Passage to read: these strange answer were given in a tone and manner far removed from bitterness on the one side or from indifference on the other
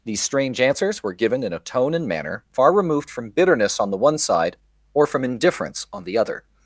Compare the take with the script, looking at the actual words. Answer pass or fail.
fail